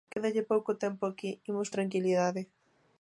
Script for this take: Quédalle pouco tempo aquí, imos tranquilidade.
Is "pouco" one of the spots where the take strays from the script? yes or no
no